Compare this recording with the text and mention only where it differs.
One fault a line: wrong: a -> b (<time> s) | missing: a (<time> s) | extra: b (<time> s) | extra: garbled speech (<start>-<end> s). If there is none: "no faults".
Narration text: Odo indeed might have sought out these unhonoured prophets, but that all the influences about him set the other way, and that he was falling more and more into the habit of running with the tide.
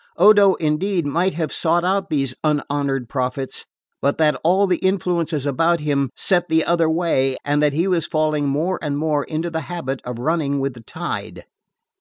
no faults